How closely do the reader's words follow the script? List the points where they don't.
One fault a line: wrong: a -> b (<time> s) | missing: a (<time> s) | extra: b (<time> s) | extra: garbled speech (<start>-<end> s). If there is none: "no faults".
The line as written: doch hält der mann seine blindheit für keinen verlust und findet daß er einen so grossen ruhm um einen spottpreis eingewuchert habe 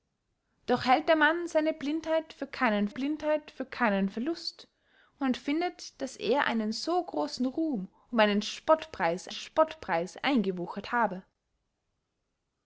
extra: blindheit für keinen (2.9 s)
extra: spottpreis (9.3 s)